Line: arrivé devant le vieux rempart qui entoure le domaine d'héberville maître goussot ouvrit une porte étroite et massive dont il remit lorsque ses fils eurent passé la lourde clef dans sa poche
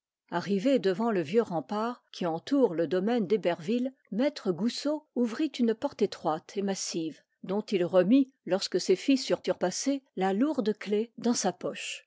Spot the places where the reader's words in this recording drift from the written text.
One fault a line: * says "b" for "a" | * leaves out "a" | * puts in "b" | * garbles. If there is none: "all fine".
* puts in "eurent"